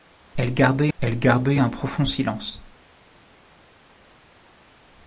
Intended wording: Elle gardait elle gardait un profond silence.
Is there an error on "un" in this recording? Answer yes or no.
no